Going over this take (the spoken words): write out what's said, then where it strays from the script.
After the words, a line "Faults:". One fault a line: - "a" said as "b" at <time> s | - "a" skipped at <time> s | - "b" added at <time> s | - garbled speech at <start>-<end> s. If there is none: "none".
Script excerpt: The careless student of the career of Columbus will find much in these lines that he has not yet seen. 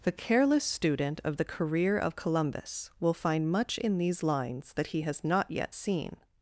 The careless student of the career of Columbus will find much in these lines that he has not yet seen.
Faults:
none